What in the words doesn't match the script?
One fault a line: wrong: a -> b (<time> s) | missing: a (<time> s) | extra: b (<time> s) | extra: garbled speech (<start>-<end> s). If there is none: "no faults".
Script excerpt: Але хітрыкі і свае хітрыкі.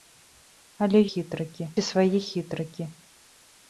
no faults